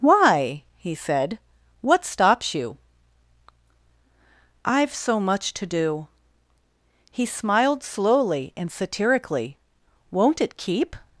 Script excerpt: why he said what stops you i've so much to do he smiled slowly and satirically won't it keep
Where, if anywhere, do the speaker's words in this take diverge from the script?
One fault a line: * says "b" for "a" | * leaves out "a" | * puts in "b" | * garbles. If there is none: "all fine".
all fine